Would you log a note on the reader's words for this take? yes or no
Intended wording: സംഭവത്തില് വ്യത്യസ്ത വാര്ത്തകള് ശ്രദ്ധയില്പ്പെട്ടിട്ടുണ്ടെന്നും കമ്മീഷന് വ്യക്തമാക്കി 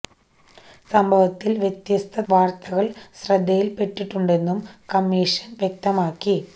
no